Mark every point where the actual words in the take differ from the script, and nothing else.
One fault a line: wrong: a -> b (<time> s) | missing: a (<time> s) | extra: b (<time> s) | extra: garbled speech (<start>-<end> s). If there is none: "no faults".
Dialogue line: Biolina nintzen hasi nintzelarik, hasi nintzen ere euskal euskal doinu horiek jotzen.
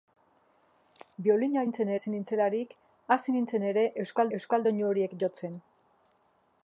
no faults